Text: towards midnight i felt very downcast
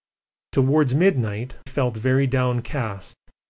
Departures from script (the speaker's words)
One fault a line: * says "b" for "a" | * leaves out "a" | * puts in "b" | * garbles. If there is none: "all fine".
* leaves out "i"